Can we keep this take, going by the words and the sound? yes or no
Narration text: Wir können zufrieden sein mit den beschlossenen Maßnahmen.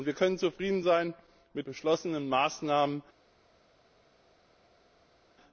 no